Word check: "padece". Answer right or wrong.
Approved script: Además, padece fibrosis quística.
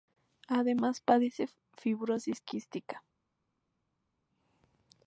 right